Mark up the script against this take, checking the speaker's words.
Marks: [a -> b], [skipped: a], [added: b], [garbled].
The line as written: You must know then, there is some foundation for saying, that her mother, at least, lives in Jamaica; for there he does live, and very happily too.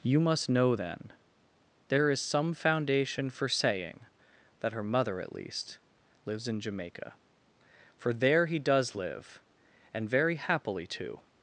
You must know then, there is some foundation for saying, that her mother, at least, lives in Jamaica; for there he does live, and very happily too.